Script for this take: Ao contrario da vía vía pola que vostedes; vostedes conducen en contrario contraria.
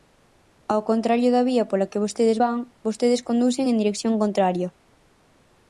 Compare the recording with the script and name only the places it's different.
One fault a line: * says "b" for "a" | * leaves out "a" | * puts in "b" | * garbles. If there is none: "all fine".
* leaves out "vía"
* puts in "van"
* says "dirección" for "contrario"